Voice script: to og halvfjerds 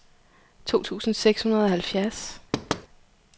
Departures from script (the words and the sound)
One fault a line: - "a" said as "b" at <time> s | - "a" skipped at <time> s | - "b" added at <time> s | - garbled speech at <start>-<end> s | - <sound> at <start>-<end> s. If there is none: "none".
- "tusind seks hundrede" added at 0.8 s
- thud at 2.5-2.9 s